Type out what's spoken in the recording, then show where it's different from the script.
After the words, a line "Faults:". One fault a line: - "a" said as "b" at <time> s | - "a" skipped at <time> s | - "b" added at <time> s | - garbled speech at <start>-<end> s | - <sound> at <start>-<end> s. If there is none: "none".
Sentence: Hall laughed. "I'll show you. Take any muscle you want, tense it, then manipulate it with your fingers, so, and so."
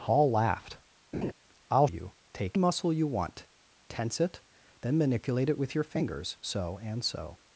Hall laughed. "I'll you. Take muscle you want, tense it, then manipulate it with your fingers, so, and so."
Faults:
- laugh at 1.1-1.3 s
- "show" skipped at 1.9 s
- "any" skipped at 2.6 s